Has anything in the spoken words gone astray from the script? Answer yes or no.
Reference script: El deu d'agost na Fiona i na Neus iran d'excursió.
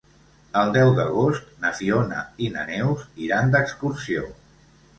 no